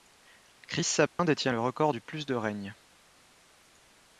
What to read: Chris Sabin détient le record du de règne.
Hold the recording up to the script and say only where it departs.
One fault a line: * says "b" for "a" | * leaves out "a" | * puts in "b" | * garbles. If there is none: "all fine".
* puts in "plus"